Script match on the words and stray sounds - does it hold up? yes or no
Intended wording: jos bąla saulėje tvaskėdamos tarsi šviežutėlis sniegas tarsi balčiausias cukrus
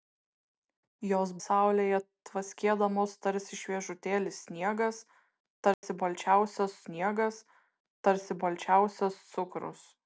no